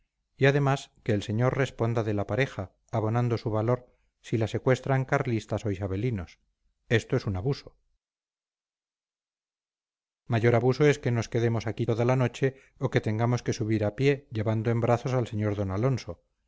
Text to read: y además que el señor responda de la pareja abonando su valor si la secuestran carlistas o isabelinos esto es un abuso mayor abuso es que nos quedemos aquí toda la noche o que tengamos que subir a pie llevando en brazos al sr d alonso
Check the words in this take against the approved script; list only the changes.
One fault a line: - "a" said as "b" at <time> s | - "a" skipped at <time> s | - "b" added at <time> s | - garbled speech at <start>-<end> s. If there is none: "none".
none